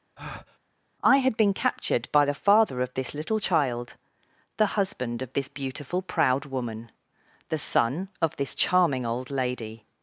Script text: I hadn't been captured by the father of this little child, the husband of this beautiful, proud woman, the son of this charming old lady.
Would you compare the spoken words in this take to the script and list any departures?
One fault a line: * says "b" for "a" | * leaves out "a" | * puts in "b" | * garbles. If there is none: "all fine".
* says "had" for "hadn't"